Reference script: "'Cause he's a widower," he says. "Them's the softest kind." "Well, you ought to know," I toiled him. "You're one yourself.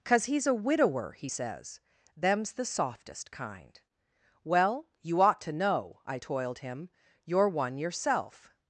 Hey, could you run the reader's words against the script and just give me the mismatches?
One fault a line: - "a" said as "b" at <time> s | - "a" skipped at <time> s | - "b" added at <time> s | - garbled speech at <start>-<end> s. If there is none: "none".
none